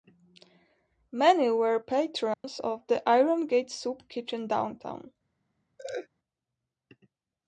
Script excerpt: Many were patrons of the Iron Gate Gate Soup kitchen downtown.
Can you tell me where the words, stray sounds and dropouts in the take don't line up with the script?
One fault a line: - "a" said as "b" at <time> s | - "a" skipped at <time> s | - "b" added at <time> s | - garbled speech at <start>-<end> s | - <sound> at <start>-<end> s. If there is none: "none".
- dropout at 2.3-2.4 s
- "Gate" skipped at 3.7 s
- laugh at 5.8-6.1 s